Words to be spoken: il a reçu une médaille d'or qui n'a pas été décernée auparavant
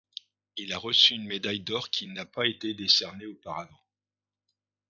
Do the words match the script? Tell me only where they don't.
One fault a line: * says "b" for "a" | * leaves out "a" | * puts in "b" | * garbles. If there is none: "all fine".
all fine